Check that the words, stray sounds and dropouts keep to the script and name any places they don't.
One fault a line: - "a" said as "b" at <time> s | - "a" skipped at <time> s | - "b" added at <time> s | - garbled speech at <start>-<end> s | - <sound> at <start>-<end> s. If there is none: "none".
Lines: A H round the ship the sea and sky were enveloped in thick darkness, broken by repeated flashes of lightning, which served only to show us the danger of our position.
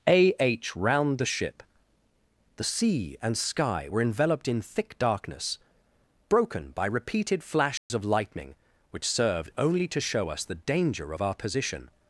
- dropout at 7.8-7.9 s